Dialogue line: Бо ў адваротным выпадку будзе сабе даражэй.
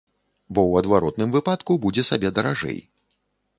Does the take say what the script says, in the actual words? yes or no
yes